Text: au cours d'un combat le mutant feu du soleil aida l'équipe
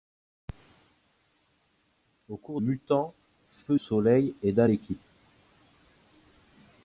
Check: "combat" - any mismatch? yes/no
yes